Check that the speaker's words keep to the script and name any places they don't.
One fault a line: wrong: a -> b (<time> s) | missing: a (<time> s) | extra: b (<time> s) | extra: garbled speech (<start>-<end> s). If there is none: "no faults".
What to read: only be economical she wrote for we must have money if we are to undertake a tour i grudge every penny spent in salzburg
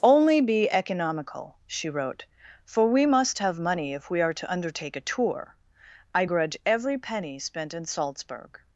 no faults